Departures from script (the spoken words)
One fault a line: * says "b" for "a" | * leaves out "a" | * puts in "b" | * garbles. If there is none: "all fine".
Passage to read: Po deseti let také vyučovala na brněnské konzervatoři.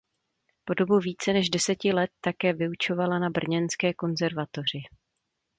* puts in "dobu více než"